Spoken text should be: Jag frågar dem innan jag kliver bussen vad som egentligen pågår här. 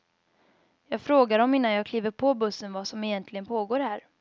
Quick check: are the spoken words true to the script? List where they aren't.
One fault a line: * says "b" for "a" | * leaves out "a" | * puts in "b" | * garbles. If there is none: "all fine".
* puts in "på"